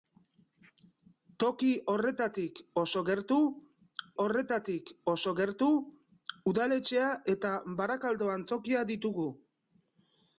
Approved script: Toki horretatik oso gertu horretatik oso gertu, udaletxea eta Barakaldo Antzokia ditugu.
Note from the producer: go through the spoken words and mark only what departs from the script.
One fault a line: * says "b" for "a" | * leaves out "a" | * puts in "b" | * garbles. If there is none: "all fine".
all fine